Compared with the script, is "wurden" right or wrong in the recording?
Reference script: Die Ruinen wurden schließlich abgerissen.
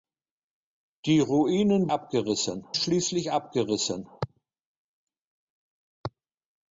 wrong